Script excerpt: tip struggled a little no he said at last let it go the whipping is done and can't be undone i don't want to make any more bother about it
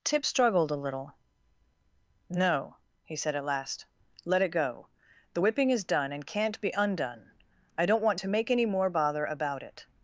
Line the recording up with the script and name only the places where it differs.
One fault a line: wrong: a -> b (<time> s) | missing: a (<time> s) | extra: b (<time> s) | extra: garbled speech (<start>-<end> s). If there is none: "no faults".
no faults